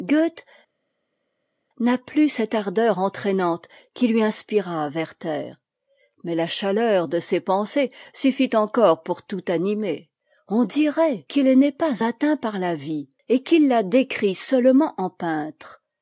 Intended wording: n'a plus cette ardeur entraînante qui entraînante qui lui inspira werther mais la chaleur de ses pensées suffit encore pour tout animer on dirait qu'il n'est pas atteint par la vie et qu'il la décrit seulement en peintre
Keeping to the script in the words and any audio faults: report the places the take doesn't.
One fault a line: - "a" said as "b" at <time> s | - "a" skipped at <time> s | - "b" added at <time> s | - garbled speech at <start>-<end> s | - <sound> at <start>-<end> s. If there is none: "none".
- "entraînante qui" skipped at 4.1 s